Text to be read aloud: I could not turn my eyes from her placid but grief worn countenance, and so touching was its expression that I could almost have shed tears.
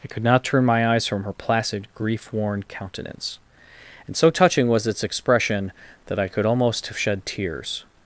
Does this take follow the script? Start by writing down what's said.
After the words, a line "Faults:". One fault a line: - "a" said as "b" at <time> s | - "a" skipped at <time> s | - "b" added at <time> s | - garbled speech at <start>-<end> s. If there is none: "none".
I could not turn my eyes from her placid grief worn countenance, and so touching was its expression that I could almost have shed tears.
Faults:
- "but" skipped at 1.9 s